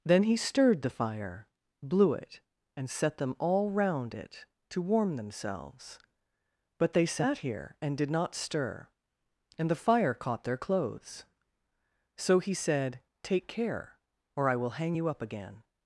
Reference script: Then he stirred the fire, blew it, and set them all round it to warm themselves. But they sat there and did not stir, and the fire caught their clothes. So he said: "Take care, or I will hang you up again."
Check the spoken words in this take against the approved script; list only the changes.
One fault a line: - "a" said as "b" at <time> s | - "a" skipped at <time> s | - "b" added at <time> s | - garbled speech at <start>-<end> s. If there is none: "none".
- "there" said as "here" at 7.4 s